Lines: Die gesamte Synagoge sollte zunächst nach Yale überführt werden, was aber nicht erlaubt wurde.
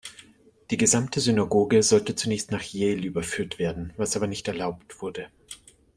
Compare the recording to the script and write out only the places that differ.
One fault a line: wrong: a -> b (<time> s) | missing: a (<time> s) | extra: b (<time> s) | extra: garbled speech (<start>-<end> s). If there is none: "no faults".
no faults